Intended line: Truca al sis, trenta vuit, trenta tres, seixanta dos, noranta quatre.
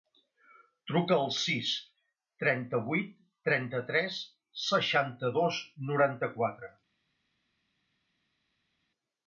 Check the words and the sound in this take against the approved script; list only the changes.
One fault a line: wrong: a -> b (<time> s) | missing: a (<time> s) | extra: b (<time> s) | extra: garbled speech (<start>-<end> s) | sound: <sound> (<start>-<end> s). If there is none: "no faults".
no faults